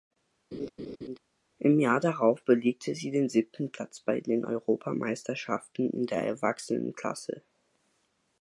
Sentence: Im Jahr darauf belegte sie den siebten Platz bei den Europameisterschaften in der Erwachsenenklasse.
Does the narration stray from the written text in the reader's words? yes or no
no